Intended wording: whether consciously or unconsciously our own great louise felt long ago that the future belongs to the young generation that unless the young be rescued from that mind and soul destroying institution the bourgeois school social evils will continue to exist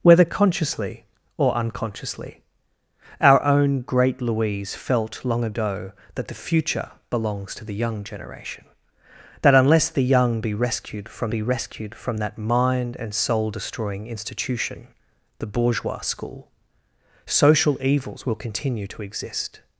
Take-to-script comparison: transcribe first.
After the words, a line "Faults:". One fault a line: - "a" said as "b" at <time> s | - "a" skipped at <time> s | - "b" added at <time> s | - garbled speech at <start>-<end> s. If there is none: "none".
whether consciously or unconsciously our own great louise felt long ago that the future belongs to the young generation that unless the young be rescued from be rescued from that mind and soul destroying institution the bourgeois school social evils will continue to exist
Faults:
- "be rescued from" added at 11.3 s